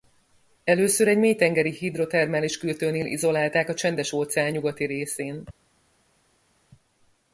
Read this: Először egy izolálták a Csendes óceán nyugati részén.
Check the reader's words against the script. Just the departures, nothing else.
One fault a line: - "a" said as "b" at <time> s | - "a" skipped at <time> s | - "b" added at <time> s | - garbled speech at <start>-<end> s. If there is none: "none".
- "mélytengeri hidrotermális kürtőnél" added at 1.2 s